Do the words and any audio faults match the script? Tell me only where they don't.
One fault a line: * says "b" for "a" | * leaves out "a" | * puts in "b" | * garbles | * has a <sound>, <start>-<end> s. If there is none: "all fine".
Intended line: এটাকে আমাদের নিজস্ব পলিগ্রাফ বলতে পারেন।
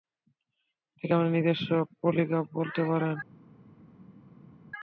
all fine